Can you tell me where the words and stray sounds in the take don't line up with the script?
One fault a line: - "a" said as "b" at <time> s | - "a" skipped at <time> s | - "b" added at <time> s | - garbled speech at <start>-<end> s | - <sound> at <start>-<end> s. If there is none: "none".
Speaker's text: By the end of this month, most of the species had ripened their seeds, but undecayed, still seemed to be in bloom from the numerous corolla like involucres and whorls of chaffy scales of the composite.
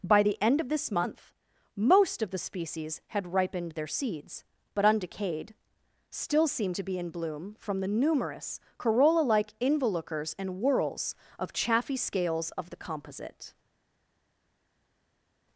none